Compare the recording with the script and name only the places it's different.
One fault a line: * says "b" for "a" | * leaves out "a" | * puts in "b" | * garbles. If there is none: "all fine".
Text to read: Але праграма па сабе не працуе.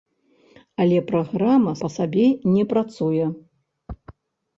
all fine